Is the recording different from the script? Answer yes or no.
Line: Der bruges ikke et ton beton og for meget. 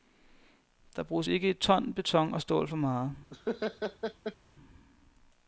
yes